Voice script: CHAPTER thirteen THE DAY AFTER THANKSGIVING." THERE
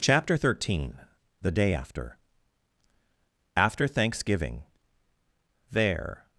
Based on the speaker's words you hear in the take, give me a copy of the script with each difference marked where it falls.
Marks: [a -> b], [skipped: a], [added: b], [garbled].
CHAPTER thirteen THE DAY AFTER [added: AFTER] THANKSGIVING." THERE